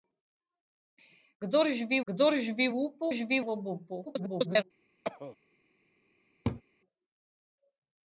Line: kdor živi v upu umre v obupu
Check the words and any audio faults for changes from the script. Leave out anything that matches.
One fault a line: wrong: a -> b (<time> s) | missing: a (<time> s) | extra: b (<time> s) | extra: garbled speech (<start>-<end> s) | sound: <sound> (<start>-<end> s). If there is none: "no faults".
extra: kdor živi (2.0 s)
wrong: umre -> živi (3.1 s)
extra: garbled speech (4.1-4.6 s)
sound: cough (5.0-5.4 s)
sound: laugh (6.4-6.6 s)